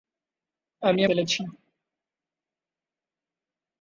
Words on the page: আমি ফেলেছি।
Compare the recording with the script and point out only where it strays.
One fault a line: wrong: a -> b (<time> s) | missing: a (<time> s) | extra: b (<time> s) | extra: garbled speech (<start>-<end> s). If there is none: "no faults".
no faults